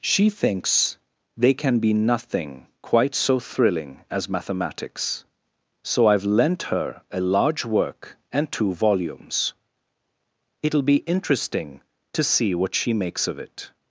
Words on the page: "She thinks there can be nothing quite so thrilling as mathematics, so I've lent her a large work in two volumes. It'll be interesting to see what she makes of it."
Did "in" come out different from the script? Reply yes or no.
yes